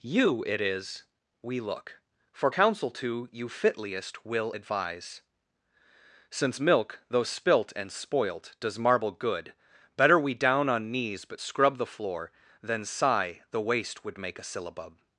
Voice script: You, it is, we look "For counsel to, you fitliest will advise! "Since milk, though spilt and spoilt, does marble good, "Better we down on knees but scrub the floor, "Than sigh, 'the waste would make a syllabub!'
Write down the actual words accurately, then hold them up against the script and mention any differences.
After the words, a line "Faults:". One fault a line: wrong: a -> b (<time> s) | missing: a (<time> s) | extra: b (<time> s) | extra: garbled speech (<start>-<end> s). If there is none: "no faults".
You, it is, we look "For counsel to, you fitliest will advise! "Since milk, though spilt and spoilt, does marble good, "Better we down on knees but scrub the floor, "Than sigh, 'the waste would make a syllabub!'
Faults:
no faults